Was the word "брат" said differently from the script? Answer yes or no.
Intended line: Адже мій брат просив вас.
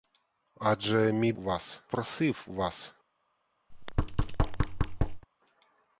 yes